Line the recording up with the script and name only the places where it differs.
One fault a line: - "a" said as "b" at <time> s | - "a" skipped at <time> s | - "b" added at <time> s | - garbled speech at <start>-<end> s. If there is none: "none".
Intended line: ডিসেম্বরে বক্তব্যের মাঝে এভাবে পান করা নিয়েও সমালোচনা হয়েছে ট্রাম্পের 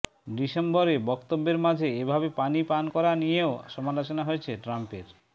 - "পানি" added at 2.4 s